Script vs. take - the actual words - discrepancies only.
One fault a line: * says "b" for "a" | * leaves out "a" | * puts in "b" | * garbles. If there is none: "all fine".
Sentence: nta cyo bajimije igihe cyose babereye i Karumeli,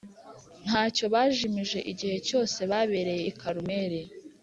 all fine